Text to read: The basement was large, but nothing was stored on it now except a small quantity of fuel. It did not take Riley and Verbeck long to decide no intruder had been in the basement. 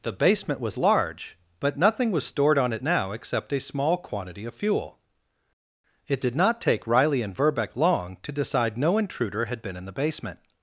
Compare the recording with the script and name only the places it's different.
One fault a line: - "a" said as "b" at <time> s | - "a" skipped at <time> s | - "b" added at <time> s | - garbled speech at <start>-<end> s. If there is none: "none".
none